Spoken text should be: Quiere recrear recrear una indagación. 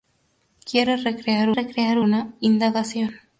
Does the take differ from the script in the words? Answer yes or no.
no